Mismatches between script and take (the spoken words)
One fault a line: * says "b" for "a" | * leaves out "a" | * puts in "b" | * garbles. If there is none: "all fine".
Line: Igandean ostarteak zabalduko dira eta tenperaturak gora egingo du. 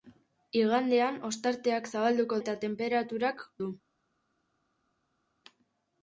* leaves out "dira"
* leaves out "gora egingo"